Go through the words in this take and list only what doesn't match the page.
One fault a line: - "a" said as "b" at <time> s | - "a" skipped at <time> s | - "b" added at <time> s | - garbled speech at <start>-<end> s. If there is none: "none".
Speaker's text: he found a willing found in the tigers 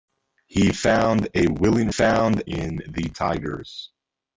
none